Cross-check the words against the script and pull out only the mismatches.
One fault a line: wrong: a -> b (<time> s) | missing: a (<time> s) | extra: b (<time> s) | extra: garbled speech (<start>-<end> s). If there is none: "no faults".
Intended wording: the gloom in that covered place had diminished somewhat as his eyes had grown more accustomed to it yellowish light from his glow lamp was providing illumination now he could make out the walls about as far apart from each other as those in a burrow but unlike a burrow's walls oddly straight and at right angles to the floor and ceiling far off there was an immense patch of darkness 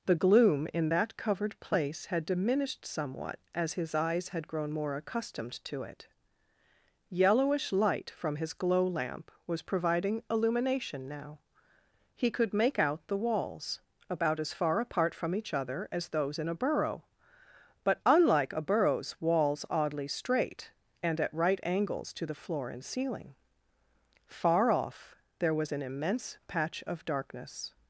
no faults